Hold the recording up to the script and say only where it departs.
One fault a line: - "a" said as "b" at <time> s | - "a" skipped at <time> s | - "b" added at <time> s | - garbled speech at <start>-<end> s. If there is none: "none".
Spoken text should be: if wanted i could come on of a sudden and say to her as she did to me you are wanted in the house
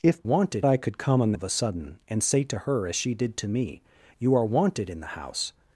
none